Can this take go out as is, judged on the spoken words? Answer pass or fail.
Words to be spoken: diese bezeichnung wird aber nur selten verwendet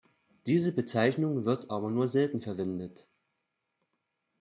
pass